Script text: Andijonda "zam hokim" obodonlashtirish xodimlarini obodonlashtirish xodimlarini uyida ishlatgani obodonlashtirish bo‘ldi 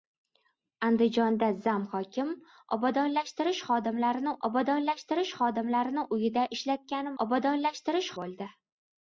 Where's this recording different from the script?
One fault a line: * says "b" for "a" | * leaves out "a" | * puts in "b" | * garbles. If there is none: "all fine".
all fine